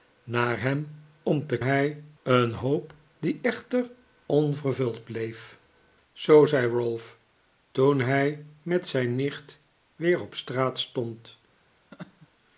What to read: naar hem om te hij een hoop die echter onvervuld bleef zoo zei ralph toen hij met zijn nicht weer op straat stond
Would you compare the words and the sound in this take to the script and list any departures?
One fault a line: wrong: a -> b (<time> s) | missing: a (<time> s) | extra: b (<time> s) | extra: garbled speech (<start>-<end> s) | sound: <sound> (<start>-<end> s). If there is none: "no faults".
sound: laugh (11.9-12.3 s)